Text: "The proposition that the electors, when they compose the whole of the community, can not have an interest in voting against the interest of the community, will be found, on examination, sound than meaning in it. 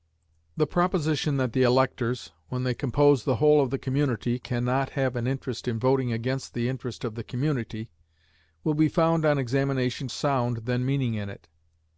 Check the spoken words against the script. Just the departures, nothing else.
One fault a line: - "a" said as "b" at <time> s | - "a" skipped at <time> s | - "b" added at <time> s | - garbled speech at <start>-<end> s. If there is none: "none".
none